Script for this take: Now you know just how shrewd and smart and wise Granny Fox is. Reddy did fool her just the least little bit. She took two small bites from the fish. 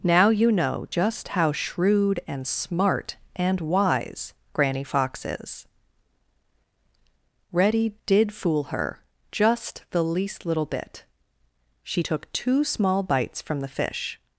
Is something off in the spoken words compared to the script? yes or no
no